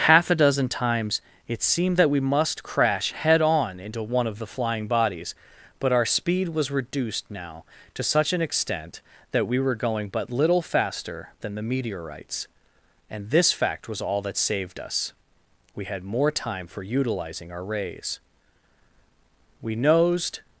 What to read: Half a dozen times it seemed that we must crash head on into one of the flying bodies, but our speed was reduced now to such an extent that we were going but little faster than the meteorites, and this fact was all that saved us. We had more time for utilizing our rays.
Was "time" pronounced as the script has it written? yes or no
yes